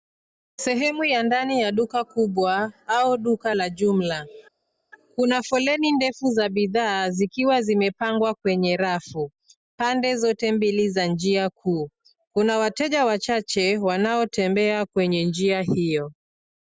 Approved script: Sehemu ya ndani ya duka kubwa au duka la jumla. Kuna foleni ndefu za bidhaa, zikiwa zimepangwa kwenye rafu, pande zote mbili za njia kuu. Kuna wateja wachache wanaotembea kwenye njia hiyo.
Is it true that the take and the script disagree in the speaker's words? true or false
false